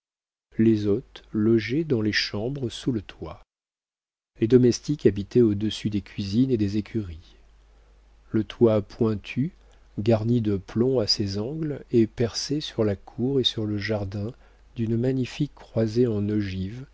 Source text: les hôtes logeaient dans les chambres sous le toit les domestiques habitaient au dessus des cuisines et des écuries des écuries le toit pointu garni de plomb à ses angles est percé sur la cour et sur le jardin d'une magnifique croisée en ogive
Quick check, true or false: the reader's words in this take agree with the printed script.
false